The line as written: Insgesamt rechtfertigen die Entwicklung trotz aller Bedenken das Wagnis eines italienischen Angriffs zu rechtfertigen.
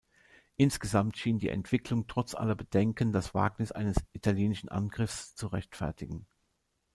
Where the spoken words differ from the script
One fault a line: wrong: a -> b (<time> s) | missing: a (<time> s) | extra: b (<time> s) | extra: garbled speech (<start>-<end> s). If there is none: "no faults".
wrong: rechtfertigen -> schien (1.2 s)